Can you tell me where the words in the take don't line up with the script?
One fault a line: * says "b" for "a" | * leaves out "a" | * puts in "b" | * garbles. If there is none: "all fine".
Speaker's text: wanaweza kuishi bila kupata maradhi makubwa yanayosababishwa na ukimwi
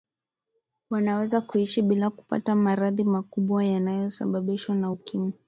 all fine